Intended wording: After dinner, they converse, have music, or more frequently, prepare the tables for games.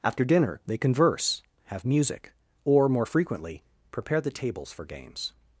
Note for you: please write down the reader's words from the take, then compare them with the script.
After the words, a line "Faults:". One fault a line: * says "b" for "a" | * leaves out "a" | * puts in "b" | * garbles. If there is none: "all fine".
After dinner, they converse, have music, or more frequently, prepare the tables for games.
Faults:
all fine